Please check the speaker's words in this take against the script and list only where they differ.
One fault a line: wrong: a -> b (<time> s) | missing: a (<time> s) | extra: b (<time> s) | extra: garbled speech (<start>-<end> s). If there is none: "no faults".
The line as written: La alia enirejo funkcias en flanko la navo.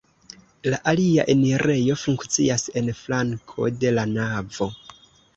extra: de (3.8 s)